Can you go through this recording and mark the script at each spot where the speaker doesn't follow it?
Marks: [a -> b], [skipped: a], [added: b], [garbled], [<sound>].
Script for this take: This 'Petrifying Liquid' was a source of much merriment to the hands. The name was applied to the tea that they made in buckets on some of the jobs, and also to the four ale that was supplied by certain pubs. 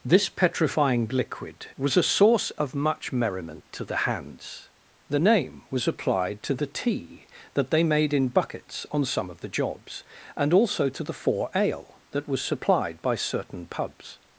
This 'Petrifying Liquid' was a source of much merriment to the hands. The name was applied to the tea that they made in buckets on some of the jobs, and also to the four ale that was supplied by certain pubs.